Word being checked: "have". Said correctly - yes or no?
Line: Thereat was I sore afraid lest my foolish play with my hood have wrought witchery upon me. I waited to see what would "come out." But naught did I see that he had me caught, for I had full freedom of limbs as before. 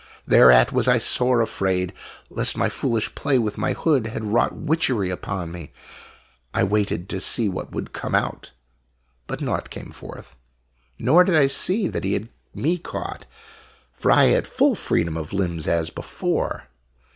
no